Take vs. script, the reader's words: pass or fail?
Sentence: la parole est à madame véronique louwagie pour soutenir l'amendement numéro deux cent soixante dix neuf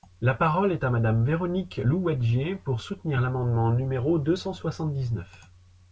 pass